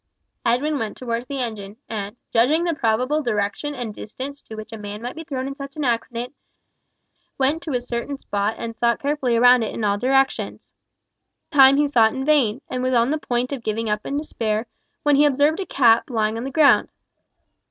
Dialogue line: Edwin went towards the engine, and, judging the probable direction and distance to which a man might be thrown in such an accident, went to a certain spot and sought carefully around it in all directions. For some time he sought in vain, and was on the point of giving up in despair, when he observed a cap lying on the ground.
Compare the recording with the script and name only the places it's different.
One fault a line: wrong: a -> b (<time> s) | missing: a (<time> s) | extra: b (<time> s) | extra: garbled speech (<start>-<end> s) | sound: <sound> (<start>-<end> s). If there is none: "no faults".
missing: For some (10.7 s)